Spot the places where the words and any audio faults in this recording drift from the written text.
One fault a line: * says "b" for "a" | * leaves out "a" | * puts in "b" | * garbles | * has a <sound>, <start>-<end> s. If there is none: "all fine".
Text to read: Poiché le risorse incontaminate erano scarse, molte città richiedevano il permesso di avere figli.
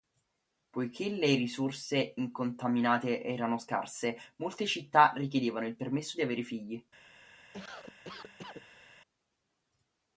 * has a cough, 7.5-9.0 s